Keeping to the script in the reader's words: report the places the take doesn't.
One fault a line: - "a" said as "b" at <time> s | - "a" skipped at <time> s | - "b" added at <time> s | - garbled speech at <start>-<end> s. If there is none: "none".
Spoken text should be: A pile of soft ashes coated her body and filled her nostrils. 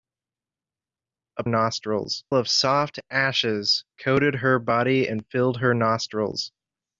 - "pile" said as "nostrils" at 1.5 s